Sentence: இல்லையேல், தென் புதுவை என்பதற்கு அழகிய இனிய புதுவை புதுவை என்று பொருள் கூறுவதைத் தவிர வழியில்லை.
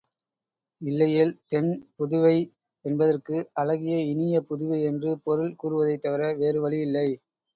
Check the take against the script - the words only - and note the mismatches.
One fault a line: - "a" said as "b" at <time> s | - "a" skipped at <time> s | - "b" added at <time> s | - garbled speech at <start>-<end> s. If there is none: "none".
- "புதுவை" skipped at 4.8 s
- "வேறு" added at 6.4 s